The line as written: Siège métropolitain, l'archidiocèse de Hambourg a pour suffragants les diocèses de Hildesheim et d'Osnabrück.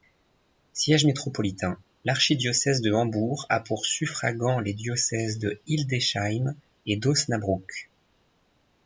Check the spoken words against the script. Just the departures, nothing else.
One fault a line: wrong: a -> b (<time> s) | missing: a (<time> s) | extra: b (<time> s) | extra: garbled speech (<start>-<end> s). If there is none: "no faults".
no faults